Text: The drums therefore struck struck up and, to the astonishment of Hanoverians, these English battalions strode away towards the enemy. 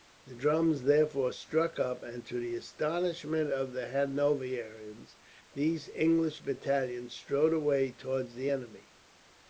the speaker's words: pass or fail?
fail